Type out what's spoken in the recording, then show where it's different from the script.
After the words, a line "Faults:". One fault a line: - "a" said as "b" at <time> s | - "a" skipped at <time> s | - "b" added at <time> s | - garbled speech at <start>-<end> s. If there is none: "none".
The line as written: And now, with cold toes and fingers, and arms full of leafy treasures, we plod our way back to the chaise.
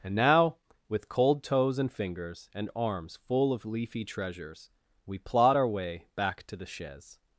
And now, with cold toes and fingers, and arms full of leafy treasures, we plod our way back to the chaise.
Faults:
none